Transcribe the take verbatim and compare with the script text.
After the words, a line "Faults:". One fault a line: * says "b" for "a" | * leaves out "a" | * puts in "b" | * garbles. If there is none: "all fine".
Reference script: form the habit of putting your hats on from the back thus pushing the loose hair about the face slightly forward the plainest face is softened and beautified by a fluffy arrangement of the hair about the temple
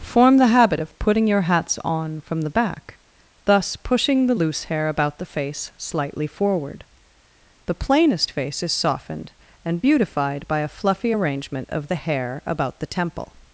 form the habit of putting your hats on from the back thus pushing the loose hair about the face slightly forward the plainest face is softened and beautified by a fluffy arrangement of the hair about the temple
Faults:
all fine